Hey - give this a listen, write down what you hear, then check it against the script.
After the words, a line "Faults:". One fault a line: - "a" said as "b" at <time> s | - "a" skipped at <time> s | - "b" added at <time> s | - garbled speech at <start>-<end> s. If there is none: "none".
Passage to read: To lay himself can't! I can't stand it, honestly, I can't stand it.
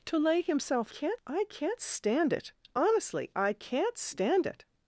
To lay himself can't! I can't stand it, honestly, I can't stand it.
Faults:
none